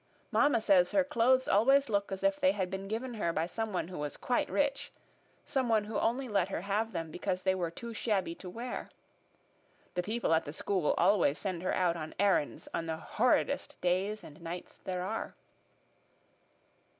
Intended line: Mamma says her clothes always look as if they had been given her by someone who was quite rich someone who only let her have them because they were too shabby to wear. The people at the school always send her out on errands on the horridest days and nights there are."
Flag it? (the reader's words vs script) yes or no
no